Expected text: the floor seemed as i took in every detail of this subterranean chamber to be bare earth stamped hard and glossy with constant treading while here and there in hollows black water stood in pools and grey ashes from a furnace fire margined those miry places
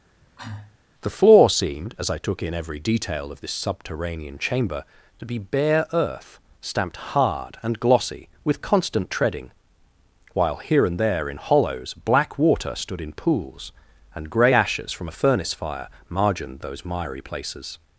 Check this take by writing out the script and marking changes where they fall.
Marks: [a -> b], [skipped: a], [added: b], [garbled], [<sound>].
[cough] the floor seemed as i took in every detail of this subterranean chamber to be bare earth stamped hard and glossy with constant treading while here and there in hollows black water stood in pools and grey ashes from a furnace fire margined those miry places